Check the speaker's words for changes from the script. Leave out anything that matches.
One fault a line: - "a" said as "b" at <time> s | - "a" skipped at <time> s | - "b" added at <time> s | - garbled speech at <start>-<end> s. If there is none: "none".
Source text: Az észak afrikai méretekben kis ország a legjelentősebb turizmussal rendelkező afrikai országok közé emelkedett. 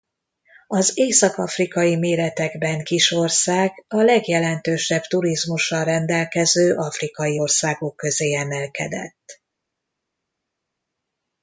none